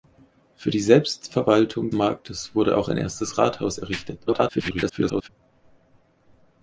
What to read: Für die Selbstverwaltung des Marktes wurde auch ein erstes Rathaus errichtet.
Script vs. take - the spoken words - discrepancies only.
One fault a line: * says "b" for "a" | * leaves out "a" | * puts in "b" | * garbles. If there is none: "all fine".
* leaves out "des"
* garbles